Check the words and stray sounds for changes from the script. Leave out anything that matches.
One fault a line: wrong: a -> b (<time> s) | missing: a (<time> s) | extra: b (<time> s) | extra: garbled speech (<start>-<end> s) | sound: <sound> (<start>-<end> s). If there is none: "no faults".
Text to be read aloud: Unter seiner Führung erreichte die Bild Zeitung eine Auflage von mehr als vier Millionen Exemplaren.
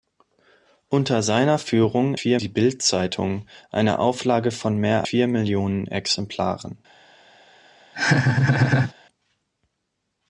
wrong: erreichte -> vier (2.1 s)
missing: als (5.1 s)
sound: laugh (7.9-8.9 s)